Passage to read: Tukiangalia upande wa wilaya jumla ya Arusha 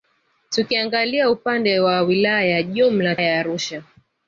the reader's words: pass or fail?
pass